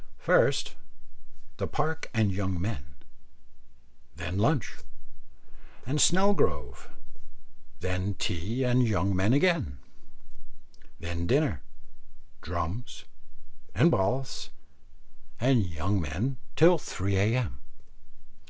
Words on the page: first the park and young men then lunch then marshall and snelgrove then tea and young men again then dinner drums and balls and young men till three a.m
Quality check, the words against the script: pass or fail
fail